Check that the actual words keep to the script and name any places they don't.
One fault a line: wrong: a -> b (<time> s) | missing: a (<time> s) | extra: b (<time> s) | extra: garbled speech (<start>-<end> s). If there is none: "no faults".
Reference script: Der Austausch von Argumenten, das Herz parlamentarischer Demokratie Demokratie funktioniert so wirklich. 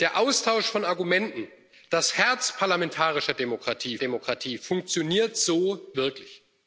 no faults